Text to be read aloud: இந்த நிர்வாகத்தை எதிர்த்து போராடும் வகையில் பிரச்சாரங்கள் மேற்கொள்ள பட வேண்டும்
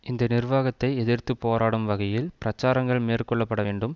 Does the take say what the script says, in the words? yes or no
yes